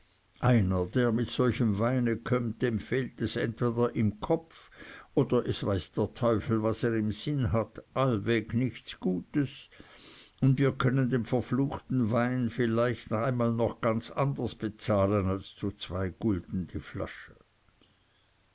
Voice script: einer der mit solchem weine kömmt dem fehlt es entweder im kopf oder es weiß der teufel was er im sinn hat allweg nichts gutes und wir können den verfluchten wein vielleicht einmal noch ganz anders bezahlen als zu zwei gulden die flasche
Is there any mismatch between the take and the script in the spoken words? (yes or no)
no